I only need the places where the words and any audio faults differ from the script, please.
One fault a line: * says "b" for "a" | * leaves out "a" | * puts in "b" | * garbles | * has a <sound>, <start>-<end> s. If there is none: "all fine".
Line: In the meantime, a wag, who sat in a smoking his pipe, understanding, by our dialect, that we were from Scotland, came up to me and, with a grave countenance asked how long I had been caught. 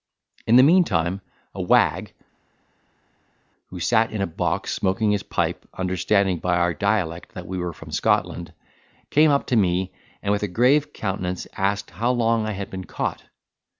* puts in "box"